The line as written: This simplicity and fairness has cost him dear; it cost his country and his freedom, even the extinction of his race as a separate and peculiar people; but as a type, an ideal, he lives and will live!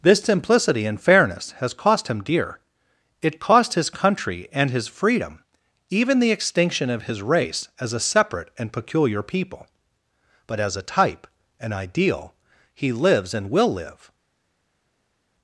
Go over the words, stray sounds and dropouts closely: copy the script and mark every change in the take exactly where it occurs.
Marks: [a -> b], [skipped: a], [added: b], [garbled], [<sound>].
This simplicity and fairness has cost him dear; it cost his country and his freedom, even the extinction of his race as a separate and peculiar people; but as a type, an ideal, he lives and will live!